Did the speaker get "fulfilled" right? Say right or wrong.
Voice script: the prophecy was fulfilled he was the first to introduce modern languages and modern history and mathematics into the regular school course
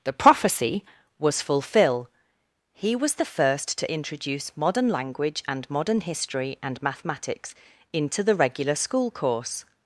wrong